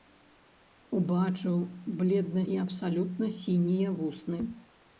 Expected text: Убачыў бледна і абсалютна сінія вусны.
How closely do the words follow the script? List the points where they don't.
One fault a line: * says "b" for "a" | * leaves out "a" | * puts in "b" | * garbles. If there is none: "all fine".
all fine